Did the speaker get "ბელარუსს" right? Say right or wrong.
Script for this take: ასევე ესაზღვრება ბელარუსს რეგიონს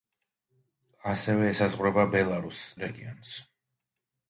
right